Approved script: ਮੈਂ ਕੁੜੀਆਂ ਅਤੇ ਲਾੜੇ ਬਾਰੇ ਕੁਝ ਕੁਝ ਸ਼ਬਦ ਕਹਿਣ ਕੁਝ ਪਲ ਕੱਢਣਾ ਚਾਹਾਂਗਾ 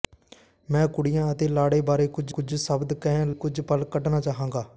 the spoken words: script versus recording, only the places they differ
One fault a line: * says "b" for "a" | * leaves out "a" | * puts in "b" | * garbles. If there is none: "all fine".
all fine